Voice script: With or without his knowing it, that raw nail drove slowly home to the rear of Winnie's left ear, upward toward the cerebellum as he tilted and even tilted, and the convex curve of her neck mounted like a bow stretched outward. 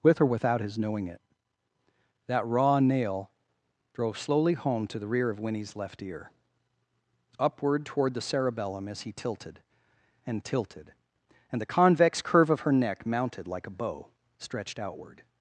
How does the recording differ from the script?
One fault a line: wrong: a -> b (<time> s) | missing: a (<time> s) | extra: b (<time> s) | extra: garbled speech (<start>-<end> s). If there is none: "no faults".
missing: even (10.4 s)